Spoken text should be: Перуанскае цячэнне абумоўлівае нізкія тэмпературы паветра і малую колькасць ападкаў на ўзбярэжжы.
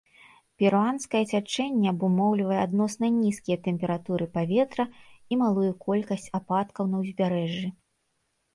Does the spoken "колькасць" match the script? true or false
true